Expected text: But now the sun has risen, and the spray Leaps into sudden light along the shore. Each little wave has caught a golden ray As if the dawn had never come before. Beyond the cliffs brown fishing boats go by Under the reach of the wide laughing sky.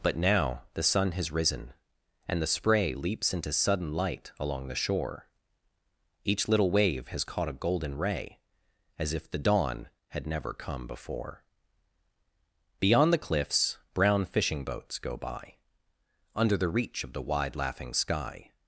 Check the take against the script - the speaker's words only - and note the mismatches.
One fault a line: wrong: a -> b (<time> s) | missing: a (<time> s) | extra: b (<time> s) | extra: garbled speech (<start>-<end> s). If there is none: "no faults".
no faults